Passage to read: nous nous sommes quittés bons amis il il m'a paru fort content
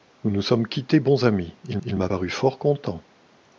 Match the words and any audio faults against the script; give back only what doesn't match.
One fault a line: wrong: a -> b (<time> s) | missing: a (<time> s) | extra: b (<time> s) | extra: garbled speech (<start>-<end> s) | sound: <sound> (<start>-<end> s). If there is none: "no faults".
no faults